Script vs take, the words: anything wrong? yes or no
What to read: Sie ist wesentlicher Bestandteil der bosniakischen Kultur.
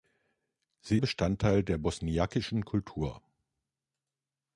yes